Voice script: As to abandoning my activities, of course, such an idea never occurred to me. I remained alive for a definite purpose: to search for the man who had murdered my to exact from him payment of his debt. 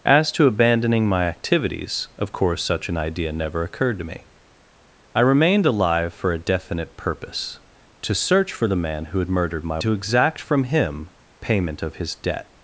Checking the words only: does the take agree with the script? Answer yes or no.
yes